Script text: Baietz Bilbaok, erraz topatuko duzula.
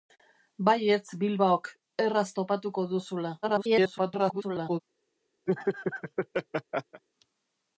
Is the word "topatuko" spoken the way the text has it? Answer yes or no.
yes